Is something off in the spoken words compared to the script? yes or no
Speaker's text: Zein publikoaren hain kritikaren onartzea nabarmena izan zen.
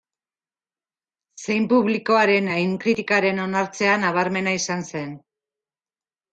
no